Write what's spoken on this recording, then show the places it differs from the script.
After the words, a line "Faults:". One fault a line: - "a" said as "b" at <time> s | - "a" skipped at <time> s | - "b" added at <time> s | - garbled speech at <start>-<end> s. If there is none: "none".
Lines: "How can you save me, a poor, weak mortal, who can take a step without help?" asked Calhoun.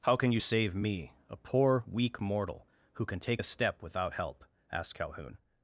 "How can you save me, a poor, weak mortal, who can take a step without help?" asked Calhoun.
Faults:
none